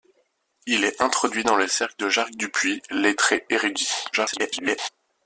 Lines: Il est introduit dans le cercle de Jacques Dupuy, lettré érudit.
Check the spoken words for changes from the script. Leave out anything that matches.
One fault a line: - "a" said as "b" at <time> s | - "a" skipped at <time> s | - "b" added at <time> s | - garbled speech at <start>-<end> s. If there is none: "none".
- garbled speech at 4.1-4.9 s